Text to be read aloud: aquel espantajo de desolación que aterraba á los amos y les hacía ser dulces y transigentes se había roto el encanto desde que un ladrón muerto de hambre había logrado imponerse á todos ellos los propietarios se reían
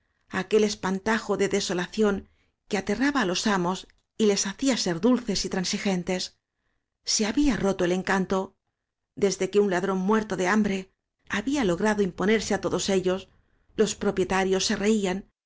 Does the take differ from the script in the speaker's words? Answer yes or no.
no